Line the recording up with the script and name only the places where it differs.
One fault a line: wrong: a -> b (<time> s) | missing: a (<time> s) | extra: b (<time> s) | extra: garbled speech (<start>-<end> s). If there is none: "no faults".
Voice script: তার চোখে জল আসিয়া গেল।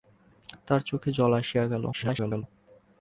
extra: garbled speech (1.9-2.4 s)